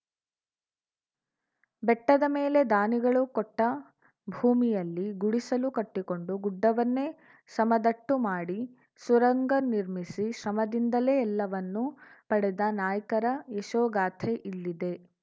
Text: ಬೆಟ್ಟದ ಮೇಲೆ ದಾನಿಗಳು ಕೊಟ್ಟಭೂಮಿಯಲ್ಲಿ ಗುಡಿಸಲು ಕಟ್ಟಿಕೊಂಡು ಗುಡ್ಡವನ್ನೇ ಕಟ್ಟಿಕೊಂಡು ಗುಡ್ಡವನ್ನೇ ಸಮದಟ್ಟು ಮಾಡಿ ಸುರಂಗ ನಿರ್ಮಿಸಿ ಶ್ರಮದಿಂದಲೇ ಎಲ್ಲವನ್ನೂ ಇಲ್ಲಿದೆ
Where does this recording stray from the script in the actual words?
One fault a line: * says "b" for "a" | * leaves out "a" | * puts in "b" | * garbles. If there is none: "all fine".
* leaves out "ಕಟ್ಟಿಕೊಂಡು ಗುಡ್ಡವನ್ನೇ"
* puts in "ಪಡೆದ ನಾಯ್ಕರ ಯಶೋಗಾಥೆ"